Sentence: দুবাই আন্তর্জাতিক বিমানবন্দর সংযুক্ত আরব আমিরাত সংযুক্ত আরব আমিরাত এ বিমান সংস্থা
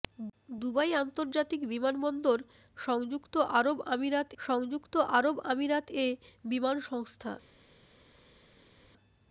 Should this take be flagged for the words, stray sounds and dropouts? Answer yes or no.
no